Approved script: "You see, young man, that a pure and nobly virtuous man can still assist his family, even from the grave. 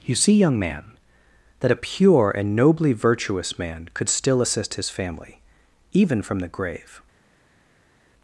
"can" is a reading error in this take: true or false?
true